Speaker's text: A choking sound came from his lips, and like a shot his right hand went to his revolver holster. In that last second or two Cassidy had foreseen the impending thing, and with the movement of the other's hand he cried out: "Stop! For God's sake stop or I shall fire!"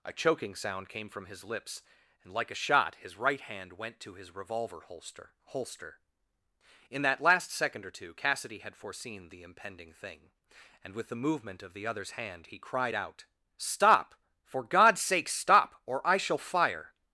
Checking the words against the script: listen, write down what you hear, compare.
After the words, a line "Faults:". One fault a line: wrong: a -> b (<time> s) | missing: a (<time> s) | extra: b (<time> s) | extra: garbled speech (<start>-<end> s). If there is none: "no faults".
A choking sound came from his lips, and like a shot his right hand went to his revolver holster holster. In that last second or two Cassidy had foreseen the impending thing, and with the movement of the other's hand he cried out: "Stop! For God's sake stop or I shall fire!"
Faults:
extra: holster (5.5 s)